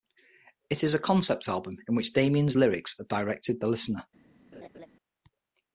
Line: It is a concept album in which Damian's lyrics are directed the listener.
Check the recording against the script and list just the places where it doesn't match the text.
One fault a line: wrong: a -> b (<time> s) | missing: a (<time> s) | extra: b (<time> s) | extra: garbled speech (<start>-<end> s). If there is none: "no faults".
no faults